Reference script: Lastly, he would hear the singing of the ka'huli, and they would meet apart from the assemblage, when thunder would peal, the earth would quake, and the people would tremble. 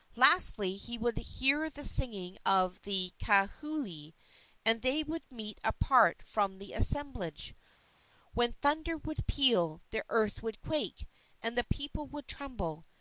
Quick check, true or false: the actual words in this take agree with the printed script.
true